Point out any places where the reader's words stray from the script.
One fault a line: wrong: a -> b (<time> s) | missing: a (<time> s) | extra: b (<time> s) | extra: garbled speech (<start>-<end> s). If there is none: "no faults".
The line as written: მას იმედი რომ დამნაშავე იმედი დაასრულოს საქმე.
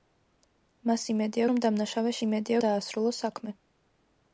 no faults